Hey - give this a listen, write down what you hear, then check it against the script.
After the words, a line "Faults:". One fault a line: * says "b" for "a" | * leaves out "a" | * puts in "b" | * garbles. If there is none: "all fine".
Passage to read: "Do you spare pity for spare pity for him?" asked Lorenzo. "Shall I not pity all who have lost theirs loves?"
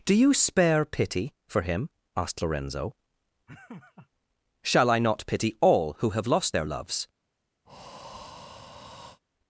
"Do you spare pity for him?" asked Lorenzo. "Shall I not pity all who have lost their loves?"
Faults:
* leaves out "spare pity for"
* says "their" for "theirs"